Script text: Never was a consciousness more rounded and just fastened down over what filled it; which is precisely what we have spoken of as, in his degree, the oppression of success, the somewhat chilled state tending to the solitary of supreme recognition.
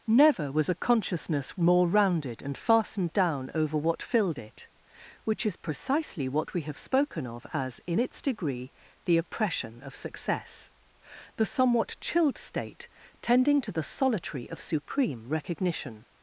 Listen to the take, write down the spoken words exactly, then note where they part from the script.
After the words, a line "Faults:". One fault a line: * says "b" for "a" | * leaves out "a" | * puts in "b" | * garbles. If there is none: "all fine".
Never was a consciousness more rounded and fastened down over what filled it; which is precisely what we have spoken of as, in its degree, the oppression of success, the somewhat chilled state tending to the solitary of supreme recognition.
Faults:
* leaves out "just"
* says "its" for "his"